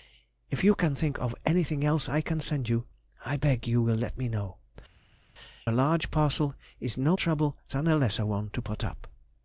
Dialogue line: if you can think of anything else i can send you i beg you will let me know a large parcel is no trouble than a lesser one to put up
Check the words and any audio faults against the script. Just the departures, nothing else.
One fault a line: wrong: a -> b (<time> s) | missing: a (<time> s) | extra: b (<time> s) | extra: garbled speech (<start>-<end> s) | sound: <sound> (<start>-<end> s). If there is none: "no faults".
no faults